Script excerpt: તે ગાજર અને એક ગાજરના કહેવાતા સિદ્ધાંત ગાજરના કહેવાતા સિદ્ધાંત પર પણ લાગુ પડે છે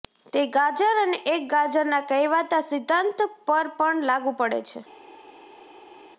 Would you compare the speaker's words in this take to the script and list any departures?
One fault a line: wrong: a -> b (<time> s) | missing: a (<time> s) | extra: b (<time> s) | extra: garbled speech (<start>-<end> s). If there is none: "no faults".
missing: ગાજરના કહેવાતા સિદ્ધાંત (3.2 s)